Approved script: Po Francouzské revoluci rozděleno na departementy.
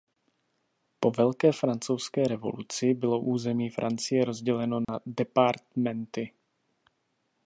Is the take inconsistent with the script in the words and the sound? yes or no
yes